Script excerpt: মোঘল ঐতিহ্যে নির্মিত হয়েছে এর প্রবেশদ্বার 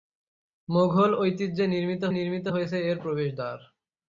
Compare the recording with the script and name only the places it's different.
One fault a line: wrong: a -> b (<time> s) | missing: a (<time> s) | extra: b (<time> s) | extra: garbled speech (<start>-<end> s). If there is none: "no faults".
extra: নির্মিত (2.1 s)